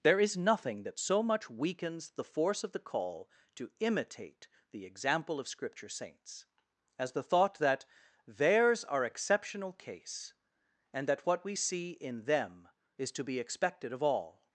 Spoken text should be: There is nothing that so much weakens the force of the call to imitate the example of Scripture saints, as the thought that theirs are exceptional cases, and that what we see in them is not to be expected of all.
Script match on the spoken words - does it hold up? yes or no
no